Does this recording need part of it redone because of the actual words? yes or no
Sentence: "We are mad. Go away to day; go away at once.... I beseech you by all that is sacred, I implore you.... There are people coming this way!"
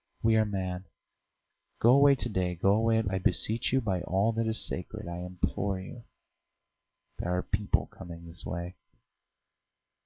yes